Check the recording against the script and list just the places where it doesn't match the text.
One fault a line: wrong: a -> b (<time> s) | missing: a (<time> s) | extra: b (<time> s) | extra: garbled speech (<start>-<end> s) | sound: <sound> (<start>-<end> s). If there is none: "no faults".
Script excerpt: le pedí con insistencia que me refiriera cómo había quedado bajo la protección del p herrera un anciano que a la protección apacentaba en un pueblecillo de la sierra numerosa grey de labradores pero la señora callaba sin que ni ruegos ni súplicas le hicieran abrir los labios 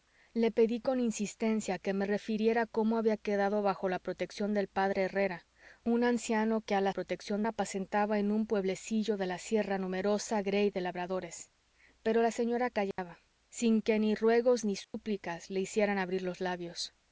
sound: dropout (12.9-13.0 s)
sound: dropout (14.8-14.9 s)